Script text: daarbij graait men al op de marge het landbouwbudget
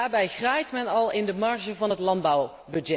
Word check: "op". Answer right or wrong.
wrong